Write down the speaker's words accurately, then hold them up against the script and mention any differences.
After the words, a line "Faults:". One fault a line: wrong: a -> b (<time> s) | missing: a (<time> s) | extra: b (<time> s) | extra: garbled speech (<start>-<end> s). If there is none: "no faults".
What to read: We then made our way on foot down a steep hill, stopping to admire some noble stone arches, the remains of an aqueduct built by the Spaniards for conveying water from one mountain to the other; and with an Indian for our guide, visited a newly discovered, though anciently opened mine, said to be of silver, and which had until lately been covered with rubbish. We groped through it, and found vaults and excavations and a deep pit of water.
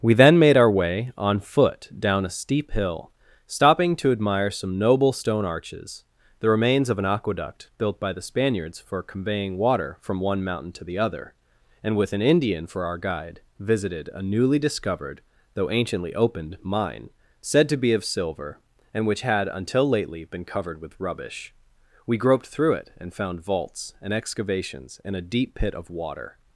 We then made our way on foot down a steep hill, stopping to admire some noble stone arches, the remains of an aqueduct built by the Spaniards for conveying water from one mountain to the other; and with an Indian for our guide, visited a newly discovered, though anciently opened mine, said to be of silver, and which had until lately been covered with rubbish. We groped through it, and found vaults and excavations and a deep pit of water.
Faults:
no faults